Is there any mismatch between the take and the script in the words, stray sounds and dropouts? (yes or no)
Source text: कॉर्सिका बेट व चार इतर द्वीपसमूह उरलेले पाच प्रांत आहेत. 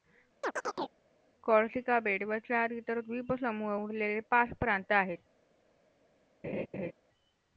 yes